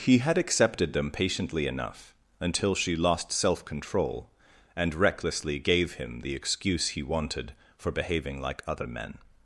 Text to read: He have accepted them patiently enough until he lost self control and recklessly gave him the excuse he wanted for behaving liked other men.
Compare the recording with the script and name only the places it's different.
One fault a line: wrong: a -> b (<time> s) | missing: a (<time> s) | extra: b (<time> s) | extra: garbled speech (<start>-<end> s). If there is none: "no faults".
wrong: have -> had (0.2 s)
wrong: he -> she (2.7 s)
wrong: liked -> like (8.4 s)